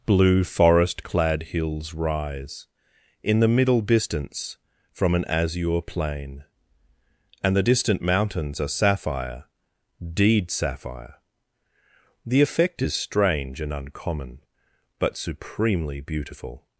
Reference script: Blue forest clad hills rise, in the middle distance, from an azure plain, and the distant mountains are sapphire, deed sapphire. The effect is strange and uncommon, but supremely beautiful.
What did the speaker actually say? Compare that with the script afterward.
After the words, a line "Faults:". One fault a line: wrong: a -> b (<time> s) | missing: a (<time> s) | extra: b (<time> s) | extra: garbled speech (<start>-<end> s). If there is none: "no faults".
Blue forest clad hills rise, in the middle distance, from an azure plain, and the distant mountains are sapphire, deed sapphire. The effect is strange and uncommon, but supremely beautiful.
Faults:
no faults